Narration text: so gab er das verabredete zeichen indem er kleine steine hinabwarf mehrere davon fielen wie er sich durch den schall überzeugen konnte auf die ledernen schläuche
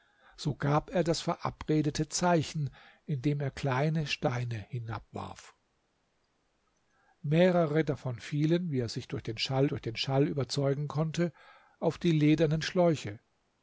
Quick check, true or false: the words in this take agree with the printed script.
false